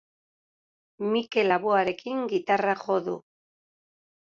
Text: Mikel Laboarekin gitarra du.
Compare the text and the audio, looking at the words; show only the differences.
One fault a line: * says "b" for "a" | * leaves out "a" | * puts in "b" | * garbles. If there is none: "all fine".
* puts in "jo"